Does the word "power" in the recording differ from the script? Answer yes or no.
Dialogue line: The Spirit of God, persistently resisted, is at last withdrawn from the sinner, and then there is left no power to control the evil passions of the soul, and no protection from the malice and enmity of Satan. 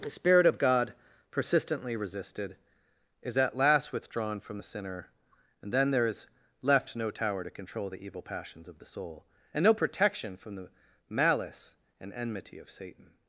yes